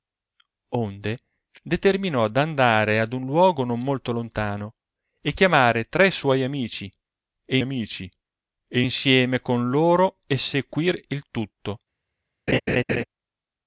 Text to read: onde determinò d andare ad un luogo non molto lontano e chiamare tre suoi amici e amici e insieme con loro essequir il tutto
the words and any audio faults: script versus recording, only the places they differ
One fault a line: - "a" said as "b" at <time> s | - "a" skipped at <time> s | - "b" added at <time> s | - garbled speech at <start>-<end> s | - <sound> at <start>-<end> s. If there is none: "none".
- laugh at 12.5-13.0 s